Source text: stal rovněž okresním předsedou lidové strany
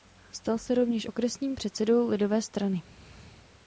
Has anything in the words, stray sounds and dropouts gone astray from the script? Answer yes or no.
yes